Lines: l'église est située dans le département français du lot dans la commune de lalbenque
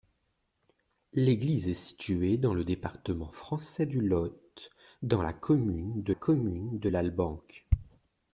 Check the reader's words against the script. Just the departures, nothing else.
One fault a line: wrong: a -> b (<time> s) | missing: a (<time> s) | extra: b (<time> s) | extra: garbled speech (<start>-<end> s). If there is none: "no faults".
extra: commune de (6.1 s)